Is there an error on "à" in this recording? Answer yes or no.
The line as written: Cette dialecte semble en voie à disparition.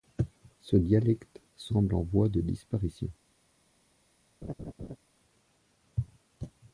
yes